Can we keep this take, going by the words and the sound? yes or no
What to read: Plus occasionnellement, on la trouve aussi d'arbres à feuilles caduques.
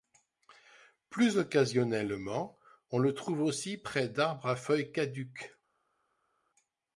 no